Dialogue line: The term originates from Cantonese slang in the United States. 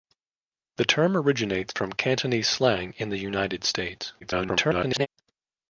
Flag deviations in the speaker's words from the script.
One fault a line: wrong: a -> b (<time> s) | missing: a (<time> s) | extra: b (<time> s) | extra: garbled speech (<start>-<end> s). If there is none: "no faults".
extra: garbled speech (4.2-5.1 s)